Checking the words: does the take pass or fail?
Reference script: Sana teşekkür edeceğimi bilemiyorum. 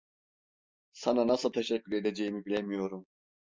fail